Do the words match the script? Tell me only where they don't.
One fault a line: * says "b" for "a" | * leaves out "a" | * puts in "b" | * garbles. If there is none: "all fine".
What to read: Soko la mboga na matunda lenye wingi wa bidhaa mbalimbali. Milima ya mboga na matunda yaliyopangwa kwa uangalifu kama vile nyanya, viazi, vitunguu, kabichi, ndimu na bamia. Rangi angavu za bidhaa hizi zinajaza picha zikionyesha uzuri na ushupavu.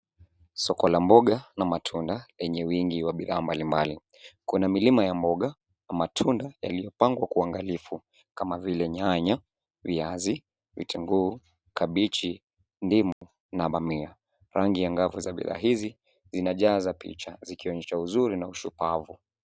* puts in "Kuna"